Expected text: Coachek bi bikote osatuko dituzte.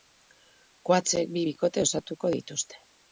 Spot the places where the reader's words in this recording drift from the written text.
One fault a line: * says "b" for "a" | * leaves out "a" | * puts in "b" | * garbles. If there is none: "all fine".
all fine